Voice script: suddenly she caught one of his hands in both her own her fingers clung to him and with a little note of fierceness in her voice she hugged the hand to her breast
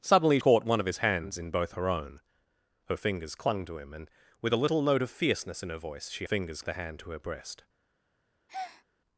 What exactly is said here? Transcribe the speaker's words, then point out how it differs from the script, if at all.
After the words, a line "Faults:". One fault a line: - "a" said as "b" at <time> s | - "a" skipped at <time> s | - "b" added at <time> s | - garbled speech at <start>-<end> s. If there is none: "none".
suddenly caught one of his hands in both her own her fingers clung to him and with a little note of fierceness in her voice she fingers the hand to her breast
Faults:
- "she" skipped at 0.4 s
- "hugged" said as "fingers" at 6.2 s